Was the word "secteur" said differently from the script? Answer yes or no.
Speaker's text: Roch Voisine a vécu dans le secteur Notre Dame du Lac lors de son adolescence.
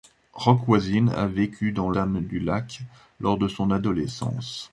yes